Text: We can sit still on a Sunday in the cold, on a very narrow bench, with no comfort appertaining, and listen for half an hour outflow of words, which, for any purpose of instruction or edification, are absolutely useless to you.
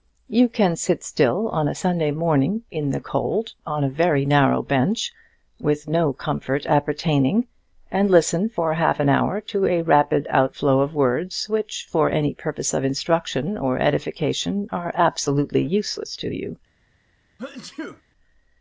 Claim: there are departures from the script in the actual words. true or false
true